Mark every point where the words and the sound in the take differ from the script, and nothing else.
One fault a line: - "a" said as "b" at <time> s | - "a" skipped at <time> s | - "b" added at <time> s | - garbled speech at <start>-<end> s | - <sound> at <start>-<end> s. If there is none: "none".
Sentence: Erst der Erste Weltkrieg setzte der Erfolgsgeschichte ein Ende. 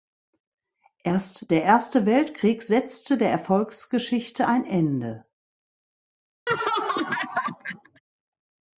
- laugh at 6.5-8.0 s